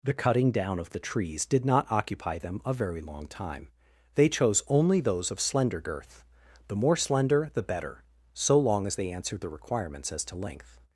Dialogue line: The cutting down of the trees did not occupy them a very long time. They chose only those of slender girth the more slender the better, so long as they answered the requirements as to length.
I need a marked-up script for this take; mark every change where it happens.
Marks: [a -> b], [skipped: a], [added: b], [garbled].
The cutting down of the trees did not occupy them a very long time. They chose only those of slender girth the more slender the better, so long as they answered the requirements as to length.